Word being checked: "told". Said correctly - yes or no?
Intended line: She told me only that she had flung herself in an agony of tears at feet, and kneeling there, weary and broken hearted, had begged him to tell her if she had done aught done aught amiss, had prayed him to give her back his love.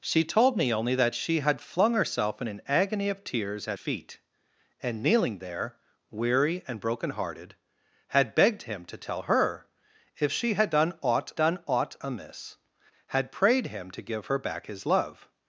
yes